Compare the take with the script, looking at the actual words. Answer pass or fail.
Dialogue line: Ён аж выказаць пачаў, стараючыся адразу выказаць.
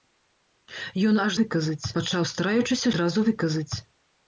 pass